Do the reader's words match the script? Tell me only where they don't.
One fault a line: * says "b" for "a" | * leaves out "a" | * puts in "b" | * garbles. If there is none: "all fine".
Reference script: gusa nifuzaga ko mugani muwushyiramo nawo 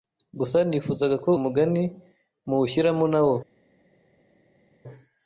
all fine